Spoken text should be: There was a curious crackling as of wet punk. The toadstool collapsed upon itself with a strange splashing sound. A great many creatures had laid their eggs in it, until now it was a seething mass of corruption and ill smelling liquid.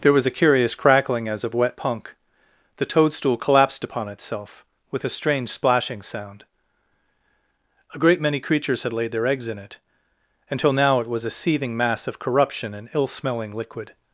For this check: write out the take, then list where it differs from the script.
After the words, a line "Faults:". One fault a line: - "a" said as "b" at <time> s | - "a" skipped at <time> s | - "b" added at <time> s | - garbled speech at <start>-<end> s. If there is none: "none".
There was a curious crackling as of wet punk. The toadstool collapsed upon itself with a strange splashing sound. A great many creatures had laid their eggs in it, until now it was a seething mass of corruption and ill smelling liquid.
Faults:
none